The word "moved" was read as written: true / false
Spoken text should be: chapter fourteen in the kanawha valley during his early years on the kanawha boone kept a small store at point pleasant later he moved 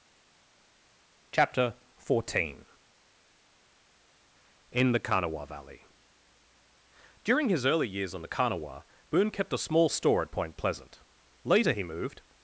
true